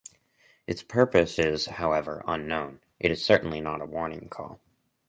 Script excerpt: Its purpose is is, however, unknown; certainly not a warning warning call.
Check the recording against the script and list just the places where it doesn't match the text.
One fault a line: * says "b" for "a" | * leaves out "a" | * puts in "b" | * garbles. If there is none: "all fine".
* leaves out "is"
* puts in "it is"
* leaves out "warning"